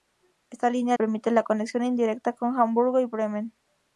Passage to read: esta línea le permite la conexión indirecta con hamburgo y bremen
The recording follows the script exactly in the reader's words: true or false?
false